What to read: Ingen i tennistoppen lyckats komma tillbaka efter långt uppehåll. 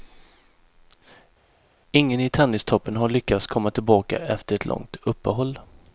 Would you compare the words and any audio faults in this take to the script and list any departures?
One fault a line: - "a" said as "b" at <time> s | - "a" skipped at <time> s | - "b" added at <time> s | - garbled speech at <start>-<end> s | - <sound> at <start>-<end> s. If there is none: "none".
- "har" added at 3.0 s
- "ett" added at 4.5 s